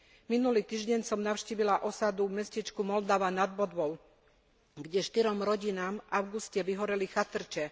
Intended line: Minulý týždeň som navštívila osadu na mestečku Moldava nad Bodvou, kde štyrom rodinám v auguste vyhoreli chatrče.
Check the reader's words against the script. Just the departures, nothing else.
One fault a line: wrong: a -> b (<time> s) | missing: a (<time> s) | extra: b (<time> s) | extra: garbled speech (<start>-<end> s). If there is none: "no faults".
wrong: na -> v (2.3 s)